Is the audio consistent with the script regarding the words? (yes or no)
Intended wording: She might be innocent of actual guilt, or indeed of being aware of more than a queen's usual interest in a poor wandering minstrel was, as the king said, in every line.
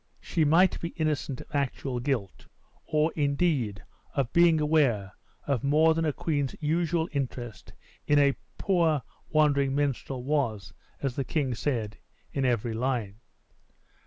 yes